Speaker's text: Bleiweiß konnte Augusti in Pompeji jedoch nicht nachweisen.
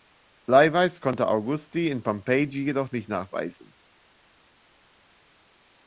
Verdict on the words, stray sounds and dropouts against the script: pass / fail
pass